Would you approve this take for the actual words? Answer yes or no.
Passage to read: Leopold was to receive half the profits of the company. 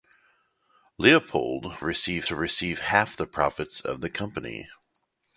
no